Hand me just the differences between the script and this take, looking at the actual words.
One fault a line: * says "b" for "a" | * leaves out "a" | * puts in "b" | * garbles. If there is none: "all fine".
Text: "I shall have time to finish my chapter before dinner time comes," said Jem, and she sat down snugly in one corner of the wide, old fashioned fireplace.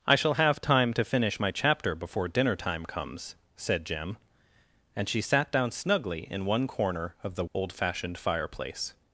* leaves out "wide"